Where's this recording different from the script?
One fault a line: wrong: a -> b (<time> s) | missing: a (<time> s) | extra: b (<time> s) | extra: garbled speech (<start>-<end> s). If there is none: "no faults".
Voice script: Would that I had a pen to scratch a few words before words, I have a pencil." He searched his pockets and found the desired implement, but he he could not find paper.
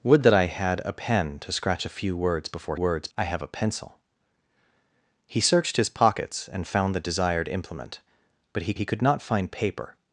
no faults